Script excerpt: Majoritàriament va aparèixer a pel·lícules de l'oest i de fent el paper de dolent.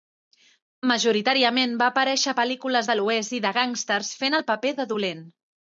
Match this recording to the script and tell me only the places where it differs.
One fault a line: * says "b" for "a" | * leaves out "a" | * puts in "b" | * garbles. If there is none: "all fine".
* puts in "gàngsters"